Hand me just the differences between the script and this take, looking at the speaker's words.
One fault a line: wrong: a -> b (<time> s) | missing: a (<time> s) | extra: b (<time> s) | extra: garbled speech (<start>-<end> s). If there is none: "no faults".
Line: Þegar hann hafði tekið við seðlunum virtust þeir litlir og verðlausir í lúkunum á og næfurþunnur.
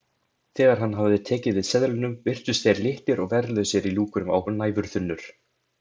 no faults